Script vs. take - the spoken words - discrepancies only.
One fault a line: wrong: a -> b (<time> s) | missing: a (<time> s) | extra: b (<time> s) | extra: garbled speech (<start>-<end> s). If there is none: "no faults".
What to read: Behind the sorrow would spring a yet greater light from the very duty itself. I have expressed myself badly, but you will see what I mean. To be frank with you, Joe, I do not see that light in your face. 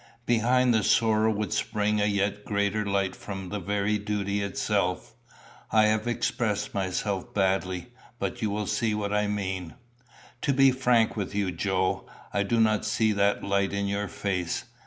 no faults